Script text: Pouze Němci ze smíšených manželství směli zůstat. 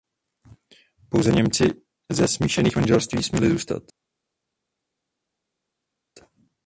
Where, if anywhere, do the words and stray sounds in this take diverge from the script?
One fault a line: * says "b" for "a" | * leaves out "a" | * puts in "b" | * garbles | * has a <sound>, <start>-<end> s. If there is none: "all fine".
all fine